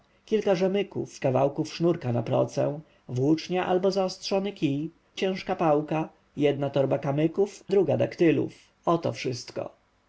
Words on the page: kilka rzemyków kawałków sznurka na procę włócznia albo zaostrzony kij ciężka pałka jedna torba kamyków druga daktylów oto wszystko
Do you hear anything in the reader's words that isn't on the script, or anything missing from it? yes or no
no